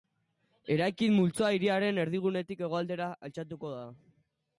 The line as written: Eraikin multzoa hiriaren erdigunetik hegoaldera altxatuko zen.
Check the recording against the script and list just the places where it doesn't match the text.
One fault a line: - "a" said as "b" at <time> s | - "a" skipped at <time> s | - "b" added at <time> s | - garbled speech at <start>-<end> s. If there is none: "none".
- "zen" said as "da" at 3.7 s